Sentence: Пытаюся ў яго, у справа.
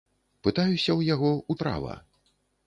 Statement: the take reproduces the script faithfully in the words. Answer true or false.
true